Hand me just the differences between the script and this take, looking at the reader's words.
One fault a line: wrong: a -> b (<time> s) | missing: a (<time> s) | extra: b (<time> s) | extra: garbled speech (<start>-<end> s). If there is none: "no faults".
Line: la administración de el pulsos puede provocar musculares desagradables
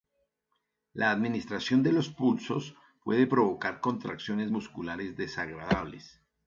wrong: el -> los (1.9 s)
extra: contracciones (3.8 s)